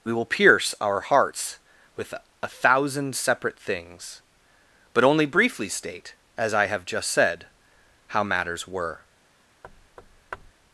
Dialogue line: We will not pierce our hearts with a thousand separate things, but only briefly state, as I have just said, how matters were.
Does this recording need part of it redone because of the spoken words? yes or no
yes